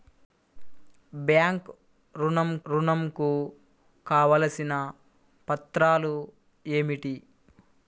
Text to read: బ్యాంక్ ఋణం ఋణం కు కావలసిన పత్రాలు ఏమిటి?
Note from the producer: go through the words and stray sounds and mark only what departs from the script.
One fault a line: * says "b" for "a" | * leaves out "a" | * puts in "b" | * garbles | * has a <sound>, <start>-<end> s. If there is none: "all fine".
all fine